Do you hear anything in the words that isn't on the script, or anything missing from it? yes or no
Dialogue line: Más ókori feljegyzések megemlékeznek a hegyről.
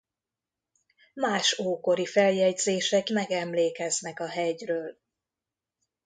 no